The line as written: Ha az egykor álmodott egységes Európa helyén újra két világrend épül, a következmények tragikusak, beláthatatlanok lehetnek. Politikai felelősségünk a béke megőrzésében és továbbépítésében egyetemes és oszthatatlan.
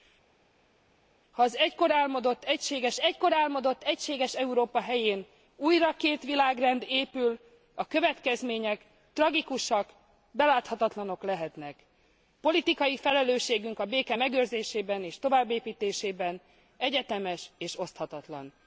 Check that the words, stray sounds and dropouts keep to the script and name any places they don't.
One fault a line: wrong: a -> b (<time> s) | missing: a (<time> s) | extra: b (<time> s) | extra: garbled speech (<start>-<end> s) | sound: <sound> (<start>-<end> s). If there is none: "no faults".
extra: egykor álmodott egységes (3.0 s)